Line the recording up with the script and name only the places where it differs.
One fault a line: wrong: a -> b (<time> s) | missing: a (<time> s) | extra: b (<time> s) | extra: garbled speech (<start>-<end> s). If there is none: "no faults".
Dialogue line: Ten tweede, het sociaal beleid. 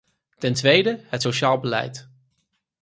no faults